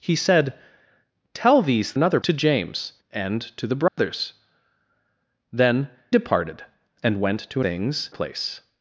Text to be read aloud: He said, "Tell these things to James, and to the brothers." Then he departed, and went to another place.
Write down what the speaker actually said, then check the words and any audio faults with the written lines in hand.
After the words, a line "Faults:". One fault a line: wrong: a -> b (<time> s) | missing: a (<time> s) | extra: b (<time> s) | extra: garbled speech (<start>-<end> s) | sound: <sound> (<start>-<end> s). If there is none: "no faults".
He said, "Tell these another to James, and to the brothers." Then departed, and went to things place.
Faults:
wrong: things -> another (1.9 s)
sound: dropout (3.9-4.0 s)
missing: he (5.9 s)
wrong: another -> things (7.6 s)